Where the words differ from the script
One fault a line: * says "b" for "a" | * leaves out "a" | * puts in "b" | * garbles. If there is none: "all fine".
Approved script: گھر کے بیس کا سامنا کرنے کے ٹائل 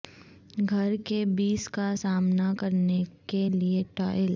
* puts in "لئے"